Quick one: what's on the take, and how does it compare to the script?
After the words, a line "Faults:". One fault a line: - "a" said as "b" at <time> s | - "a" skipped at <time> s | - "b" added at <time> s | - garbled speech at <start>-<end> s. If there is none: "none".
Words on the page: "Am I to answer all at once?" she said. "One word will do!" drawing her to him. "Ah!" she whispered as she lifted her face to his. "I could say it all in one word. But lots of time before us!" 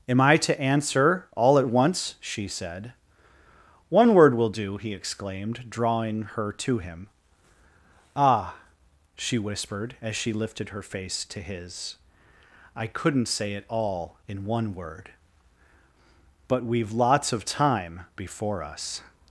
"Am I to answer all at once?" she said. "One word will do!" he exclaimed, drawing her to him. "Ah!" she whispered as she lifted her face to his. "I couldn't say it all in one word. But we've lots of time before us!"
Faults:
- "he exclaimed" added at 4.8 s
- "could" said as "couldn't" at 12.9 s
- "we've" added at 16.6 s